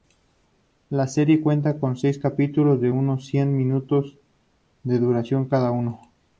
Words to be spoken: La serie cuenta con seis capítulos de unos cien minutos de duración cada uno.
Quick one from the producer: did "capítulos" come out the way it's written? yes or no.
yes